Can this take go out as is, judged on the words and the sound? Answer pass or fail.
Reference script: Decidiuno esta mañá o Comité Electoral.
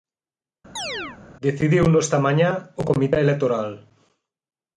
fail